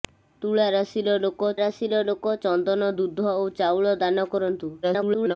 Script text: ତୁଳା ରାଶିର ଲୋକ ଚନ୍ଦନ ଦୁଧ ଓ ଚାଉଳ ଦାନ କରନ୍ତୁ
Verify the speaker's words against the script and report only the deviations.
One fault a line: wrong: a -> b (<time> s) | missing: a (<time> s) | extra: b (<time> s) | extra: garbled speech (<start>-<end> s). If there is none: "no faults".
extra: ରାଶିର ଲୋକ (1.6 s)
extra: garbled speech (4.8-5.4 s)